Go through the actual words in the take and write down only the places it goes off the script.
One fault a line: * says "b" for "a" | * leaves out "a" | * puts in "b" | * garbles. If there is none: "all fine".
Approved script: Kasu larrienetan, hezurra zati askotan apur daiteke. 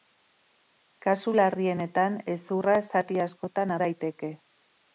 * leaves out "apur"